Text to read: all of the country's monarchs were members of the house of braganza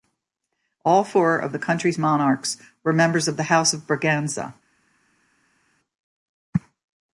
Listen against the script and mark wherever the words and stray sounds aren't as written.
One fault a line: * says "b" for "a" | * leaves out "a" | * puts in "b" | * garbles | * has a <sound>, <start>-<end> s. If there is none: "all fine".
* puts in "four"